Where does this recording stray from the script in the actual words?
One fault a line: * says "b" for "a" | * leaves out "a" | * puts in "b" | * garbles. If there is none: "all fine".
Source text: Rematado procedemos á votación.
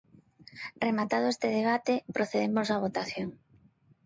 * puts in "este debate"